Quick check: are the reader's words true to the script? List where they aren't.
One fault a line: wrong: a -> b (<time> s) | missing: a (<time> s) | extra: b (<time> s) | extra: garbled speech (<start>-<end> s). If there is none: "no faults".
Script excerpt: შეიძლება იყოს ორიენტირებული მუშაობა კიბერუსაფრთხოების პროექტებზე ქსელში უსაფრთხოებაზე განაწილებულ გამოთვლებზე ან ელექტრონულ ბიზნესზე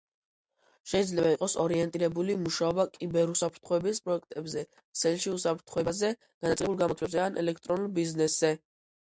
no faults